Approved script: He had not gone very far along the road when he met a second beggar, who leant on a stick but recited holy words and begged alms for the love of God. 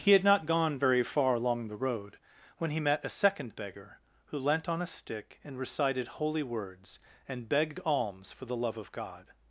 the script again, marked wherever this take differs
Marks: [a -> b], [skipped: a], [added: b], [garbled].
He had not gone very far along the road when he met a second beggar, who leant on a stick [but -> and] recited holy words and begged alms for the love of God.